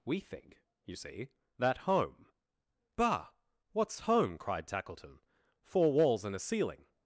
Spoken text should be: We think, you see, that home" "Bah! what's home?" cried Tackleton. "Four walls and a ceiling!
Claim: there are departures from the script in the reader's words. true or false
false